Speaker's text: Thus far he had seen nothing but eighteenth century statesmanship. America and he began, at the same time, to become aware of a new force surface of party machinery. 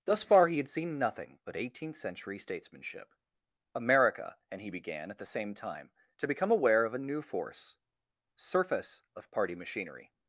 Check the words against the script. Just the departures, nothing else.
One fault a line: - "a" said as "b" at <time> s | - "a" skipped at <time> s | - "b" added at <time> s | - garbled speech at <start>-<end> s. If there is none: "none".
none